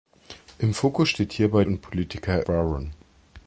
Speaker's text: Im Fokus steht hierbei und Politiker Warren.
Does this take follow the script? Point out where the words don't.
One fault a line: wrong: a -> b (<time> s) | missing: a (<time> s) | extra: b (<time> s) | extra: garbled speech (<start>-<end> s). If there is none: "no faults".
no faults